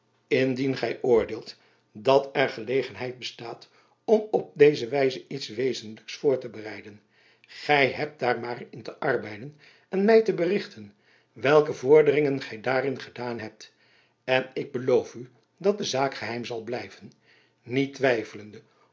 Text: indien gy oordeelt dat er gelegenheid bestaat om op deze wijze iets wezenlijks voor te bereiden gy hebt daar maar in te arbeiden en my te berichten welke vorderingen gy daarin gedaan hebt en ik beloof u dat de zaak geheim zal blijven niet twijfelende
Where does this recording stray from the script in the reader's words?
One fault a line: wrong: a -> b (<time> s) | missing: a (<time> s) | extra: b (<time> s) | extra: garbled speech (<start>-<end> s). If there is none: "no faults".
no faults